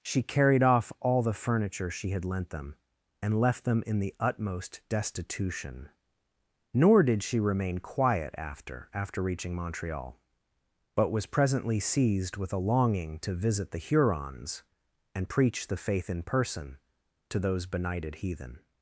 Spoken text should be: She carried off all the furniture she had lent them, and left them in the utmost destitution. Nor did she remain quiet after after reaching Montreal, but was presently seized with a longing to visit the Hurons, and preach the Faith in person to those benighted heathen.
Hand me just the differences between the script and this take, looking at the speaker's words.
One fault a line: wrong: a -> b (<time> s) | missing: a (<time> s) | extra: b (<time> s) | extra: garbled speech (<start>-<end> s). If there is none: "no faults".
no faults